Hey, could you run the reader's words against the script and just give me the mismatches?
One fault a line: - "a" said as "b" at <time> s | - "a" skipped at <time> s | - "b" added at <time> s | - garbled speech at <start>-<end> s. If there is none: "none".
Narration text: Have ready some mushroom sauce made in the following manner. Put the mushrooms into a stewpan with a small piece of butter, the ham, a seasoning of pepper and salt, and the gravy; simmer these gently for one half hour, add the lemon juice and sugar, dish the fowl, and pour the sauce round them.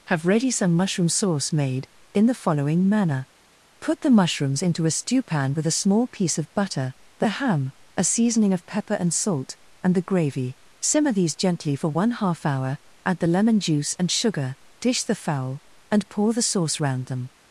none